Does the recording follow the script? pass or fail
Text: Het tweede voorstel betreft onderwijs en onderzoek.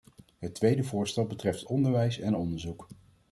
pass